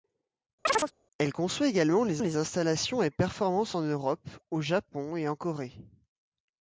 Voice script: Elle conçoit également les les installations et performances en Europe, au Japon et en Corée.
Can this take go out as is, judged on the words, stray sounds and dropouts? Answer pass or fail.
fail